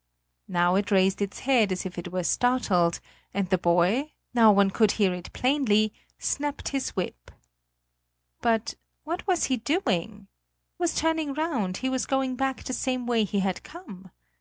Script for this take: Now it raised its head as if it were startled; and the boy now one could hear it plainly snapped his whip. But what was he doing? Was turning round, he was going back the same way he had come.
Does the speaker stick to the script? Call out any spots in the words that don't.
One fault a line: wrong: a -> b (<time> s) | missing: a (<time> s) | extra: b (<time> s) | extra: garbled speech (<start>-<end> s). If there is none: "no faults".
no faults